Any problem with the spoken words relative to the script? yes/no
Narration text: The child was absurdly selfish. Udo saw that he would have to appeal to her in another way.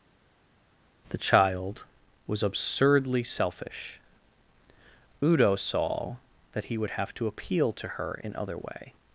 yes